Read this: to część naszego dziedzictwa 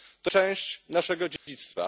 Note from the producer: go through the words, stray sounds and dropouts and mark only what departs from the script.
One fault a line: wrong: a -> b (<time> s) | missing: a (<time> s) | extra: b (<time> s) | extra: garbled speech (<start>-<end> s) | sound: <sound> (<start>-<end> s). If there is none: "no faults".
sound: dropout (1.4-1.5 s)